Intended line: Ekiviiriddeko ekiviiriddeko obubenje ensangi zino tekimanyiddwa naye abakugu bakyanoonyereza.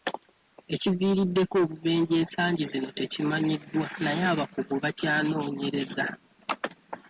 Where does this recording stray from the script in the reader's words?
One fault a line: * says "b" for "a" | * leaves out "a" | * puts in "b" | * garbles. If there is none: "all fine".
* leaves out "ekiviiriddeko"